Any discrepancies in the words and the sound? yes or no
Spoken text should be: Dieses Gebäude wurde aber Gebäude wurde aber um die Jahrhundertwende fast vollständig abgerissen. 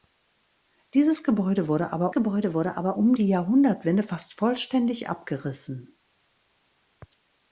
no